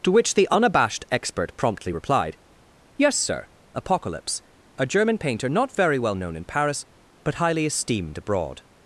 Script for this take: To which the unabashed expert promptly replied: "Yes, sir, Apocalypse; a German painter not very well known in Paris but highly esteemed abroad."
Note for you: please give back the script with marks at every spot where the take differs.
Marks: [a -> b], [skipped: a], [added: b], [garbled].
To which the unabashed expert promptly replied: "Yes, sir, Apocalypse; a German painter not very well known in Paris but highly esteemed abroad."